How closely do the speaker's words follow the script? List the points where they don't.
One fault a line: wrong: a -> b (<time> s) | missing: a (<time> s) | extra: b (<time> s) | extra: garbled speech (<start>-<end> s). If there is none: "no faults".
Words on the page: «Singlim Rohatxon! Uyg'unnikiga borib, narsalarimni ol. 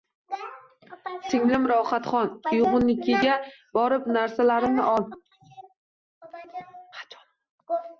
no faults